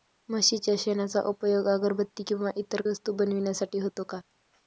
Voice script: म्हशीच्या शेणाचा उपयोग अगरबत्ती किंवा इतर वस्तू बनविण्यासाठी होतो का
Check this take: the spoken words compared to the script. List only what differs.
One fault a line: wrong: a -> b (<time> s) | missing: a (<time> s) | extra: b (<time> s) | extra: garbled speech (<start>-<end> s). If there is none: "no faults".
no faults